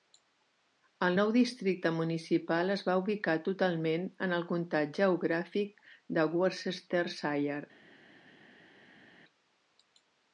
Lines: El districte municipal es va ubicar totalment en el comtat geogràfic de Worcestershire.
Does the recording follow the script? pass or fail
fail